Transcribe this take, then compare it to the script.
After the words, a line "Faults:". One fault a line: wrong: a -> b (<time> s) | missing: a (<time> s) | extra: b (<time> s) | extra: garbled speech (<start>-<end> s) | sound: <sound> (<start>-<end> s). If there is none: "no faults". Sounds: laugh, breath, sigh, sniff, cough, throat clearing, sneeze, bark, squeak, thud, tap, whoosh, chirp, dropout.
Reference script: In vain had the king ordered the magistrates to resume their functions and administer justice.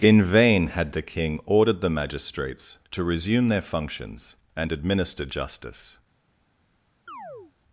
In vain had the king ordered the magistrates to resume their functions and administer justice.
Faults:
sound: chirp (7.1-7.5 s)